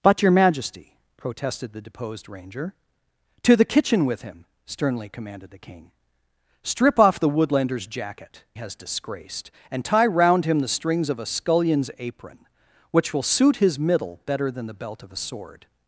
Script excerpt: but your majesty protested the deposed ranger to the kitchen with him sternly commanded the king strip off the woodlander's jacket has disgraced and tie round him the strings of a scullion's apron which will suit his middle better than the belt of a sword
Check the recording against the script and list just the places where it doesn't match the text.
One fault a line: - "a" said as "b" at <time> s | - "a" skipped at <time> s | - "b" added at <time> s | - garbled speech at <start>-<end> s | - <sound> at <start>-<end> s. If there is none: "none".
none